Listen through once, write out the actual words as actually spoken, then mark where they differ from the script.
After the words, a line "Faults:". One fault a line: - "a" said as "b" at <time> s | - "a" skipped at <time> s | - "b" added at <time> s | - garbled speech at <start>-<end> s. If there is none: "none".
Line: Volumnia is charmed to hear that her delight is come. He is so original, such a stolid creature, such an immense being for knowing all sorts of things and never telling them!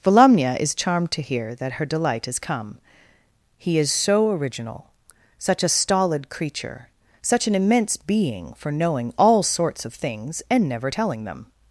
Volumnia is charmed to hear that her delight is come. He is so original, such a stolid creature, such an immense being for knowing all sorts of things and never telling them!
Faults:
none